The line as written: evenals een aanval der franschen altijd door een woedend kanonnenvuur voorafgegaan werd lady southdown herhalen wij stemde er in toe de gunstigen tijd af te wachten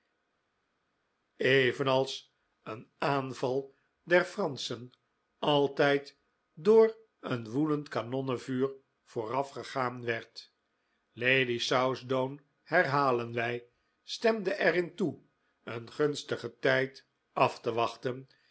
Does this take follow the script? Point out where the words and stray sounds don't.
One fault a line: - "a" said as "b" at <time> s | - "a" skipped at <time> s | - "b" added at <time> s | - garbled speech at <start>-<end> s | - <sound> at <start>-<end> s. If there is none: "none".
- "de" said as "een" at 15.6 s